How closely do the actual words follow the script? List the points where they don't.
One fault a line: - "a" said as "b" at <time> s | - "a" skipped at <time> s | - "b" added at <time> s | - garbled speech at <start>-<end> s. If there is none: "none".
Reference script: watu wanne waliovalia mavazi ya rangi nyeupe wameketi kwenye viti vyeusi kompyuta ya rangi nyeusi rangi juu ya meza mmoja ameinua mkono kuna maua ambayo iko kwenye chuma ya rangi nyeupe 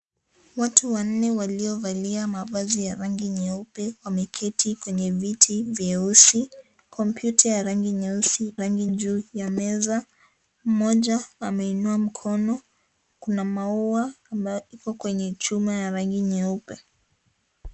none